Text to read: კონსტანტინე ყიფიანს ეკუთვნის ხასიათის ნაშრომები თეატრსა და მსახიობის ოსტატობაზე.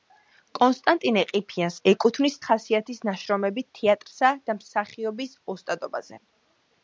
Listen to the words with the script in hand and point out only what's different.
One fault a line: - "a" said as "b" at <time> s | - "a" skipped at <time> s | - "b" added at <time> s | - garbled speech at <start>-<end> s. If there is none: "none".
none